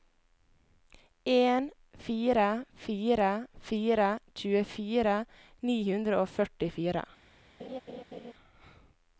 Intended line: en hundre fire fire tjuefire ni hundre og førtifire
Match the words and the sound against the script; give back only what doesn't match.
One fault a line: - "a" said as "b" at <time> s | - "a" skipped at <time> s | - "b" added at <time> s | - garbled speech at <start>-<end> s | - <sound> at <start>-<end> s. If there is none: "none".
- "hundre" said as "fire" at 2.0 s
- laugh at 7.6-8.3 s